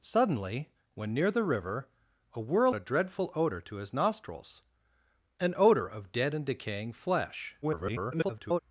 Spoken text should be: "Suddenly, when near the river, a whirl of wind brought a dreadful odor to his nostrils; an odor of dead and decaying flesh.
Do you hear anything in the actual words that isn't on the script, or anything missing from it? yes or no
yes